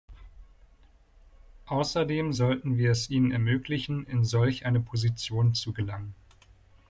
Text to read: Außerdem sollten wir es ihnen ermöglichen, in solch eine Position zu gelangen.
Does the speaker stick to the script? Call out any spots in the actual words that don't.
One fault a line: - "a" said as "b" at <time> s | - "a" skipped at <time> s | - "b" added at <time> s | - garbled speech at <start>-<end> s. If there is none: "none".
none